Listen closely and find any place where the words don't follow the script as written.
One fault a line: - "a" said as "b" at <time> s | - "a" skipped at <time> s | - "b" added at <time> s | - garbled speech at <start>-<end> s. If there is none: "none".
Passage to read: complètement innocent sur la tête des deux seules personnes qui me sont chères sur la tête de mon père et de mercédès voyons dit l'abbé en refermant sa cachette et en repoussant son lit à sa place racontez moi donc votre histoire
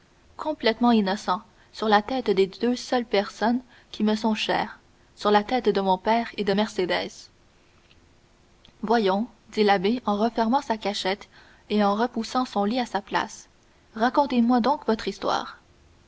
none